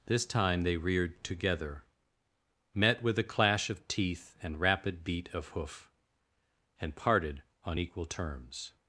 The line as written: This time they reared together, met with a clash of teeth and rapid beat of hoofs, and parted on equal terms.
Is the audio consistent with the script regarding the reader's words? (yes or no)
no